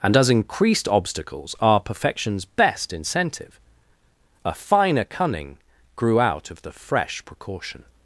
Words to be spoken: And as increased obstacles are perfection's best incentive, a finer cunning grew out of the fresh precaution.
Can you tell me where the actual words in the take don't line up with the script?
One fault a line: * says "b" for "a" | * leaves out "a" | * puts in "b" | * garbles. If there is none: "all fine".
all fine